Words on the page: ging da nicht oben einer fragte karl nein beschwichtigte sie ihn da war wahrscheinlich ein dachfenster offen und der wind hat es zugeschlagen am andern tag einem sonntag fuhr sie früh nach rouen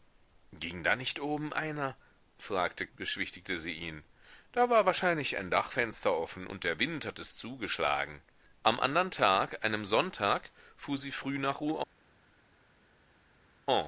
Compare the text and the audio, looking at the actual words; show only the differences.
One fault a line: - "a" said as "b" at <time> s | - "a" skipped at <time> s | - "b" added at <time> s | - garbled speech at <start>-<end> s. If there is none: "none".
- "karl nein" skipped at 2.9 s